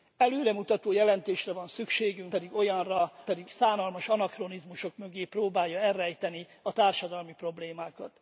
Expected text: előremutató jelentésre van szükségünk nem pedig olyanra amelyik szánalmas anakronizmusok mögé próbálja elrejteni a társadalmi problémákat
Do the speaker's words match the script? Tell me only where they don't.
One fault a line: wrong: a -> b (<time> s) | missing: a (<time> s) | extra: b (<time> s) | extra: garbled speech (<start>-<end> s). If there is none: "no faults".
missing: nem (2.3 s)
wrong: amelyik -> pedig (3.2 s)